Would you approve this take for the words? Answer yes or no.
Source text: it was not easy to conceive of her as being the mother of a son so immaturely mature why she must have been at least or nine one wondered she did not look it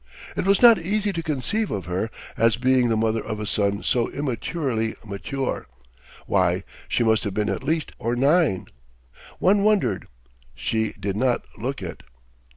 yes